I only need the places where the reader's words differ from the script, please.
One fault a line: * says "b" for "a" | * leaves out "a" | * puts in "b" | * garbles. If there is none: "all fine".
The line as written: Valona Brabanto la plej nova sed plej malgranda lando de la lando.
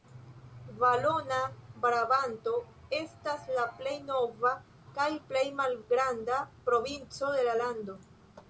* puts in "estas"
* says "kaj" for "sed"
* says "provinco" for "lando"